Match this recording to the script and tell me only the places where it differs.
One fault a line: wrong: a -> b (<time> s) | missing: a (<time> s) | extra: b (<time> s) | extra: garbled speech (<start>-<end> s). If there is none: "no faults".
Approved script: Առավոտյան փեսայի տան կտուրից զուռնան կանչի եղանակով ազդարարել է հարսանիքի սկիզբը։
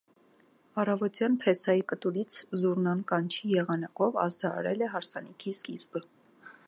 missing: տան (1.8 s)